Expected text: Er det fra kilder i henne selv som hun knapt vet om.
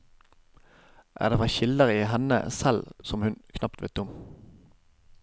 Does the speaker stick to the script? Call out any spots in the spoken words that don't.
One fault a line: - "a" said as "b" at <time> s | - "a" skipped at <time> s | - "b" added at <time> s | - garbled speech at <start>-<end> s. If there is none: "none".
none